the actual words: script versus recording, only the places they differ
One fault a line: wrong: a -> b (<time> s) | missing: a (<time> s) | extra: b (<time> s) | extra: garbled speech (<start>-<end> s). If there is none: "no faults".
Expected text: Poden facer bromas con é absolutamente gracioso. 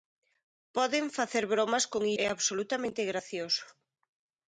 no faults